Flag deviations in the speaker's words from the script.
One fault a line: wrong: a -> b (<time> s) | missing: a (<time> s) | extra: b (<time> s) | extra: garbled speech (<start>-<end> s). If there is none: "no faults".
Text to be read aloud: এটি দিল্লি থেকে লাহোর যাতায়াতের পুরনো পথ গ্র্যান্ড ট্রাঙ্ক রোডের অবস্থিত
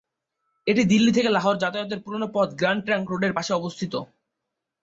extra: পাশে (3.4 s)